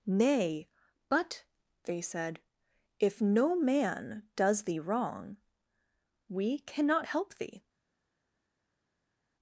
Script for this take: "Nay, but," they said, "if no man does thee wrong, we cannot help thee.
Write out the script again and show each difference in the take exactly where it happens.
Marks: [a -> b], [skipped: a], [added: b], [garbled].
"Nay, but," they said, "if no man does thee wrong, we cannot help thee.